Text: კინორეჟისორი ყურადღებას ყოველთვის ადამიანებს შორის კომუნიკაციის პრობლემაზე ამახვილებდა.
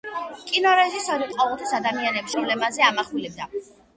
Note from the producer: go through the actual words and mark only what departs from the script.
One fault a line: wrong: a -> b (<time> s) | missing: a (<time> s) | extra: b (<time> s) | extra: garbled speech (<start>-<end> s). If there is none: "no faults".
missing: ყურადღებას (1.3 s)
missing: შორის კომუნიკაციის (2.4 s)